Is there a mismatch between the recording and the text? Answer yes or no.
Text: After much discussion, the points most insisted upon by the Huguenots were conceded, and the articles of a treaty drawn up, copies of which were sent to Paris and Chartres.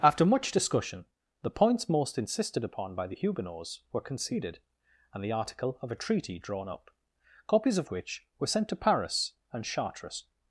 yes